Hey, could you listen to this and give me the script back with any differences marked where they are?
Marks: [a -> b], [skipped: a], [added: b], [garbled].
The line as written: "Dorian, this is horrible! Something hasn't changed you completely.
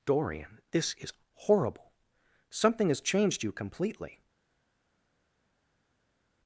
"Dorian, this is horrible! Something [hasn't -> has] changed you completely.